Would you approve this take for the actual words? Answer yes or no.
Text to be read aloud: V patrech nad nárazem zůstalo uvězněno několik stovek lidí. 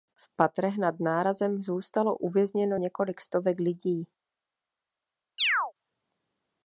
yes